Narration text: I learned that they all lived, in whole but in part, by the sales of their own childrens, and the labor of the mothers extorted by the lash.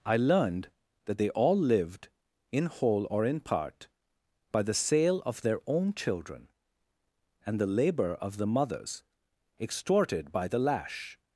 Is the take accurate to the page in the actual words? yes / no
no